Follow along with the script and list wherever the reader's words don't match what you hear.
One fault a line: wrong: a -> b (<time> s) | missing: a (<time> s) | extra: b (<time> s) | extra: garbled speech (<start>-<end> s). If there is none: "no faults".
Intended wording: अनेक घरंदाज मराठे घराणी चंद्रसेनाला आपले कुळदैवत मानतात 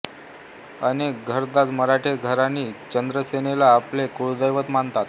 no faults